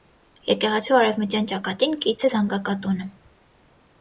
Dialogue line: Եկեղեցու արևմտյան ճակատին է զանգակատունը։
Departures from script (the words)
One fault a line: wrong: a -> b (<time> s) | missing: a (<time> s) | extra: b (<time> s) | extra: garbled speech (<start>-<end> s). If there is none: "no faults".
extra: կից (2.1 s)